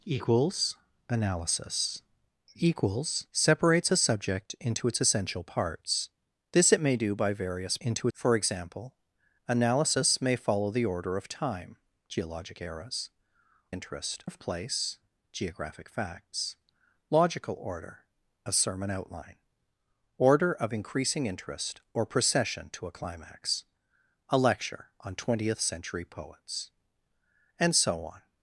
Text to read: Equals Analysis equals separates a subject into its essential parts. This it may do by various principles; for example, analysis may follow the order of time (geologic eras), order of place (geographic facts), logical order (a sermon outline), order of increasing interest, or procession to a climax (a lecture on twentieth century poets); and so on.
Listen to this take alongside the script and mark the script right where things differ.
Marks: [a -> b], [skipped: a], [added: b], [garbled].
Equals Analysis equals separates a subject into its essential parts. This it may do by various [principles; -> into] for example, analysis may follow the order of time (geologic eras), [order -> interest] of place (geographic facts), logical order (a sermon outline), order of increasing interest, or procession to a climax (a lecture on twentieth century poets); and so on.